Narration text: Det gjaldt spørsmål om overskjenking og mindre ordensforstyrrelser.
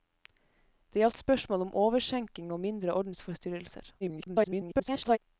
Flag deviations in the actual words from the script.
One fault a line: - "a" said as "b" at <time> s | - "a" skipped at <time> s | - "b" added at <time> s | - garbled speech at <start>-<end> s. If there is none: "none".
- garbled speech at 4.0-5.2 s